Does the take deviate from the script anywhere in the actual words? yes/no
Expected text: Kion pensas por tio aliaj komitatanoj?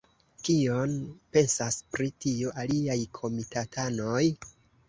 yes